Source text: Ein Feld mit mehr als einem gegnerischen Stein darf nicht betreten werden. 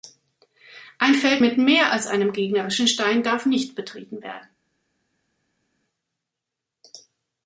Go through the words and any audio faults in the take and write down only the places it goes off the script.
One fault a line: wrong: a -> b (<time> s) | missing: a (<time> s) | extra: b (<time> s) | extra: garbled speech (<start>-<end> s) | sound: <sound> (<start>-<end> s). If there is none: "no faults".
no faults